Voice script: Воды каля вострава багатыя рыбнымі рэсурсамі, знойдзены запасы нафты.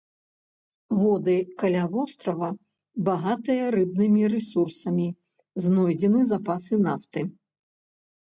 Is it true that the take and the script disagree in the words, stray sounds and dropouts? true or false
false